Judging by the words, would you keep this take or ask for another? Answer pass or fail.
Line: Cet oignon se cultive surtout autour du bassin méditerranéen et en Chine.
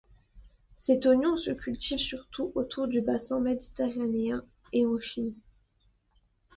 pass